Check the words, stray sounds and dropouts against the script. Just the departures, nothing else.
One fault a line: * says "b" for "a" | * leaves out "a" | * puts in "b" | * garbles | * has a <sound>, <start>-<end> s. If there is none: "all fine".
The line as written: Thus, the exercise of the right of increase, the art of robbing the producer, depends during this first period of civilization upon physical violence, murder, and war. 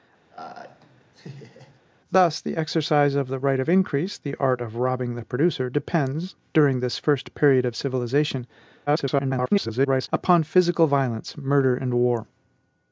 * has a laugh, 0.3-1.8 s
* garbles